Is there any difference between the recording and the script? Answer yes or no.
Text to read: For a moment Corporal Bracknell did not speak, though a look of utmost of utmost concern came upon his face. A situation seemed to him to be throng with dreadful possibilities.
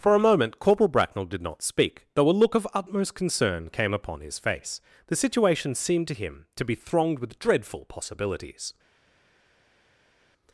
yes